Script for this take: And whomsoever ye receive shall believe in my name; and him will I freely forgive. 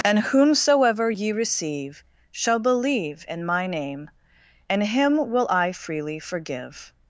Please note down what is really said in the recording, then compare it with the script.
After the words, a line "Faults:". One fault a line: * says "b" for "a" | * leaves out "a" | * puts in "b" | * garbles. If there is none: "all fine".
And whomsoever ye receive shall believe in my name; and him will I freely forgive.
Faults:
all fine